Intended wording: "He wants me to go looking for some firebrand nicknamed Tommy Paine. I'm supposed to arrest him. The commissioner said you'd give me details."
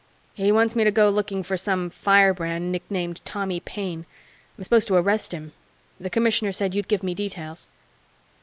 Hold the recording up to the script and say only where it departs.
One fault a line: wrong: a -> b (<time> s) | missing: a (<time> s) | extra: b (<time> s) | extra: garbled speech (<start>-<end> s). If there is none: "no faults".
no faults